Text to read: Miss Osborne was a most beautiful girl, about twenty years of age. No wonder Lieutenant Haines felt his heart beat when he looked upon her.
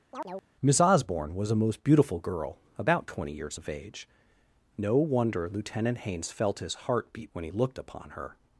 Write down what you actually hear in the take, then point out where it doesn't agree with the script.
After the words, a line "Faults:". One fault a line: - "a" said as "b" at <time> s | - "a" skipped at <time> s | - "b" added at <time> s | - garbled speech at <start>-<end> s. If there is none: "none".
Miss Osborne was a most beautiful girl, about twenty years of age. No wonder Lieutenant Haines felt his heart beat when he looked upon her.
Faults:
none